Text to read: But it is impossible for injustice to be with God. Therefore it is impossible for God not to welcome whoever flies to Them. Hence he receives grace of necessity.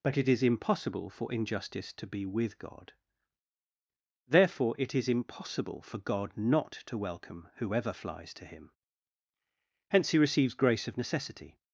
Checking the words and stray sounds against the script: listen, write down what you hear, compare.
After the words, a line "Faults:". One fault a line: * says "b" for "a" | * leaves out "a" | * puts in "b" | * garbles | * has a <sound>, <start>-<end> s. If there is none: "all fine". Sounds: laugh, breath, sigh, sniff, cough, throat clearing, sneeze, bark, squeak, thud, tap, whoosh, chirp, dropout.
But it is impossible for injustice to be with God. Therefore it is impossible for God not to welcome whoever flies to Him. Hence he receives grace of necessity.
Faults:
* says "Him" for "Them"